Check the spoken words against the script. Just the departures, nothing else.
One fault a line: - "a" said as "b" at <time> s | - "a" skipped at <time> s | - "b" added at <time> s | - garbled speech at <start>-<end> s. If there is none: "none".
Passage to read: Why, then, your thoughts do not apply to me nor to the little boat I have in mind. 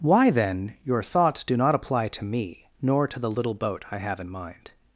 none